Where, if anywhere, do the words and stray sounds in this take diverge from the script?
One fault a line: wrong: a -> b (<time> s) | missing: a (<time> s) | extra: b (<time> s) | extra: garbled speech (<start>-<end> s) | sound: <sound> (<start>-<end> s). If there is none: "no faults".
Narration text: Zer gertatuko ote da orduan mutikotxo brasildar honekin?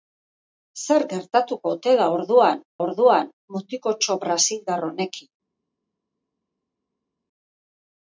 extra: orduan (2.8 s)